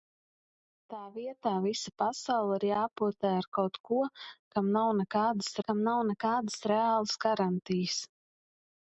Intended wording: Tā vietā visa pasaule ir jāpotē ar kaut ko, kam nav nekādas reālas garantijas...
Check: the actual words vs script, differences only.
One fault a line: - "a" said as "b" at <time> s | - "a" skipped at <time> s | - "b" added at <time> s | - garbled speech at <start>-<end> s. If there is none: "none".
- "kam nav nekādas" added at 5.7 s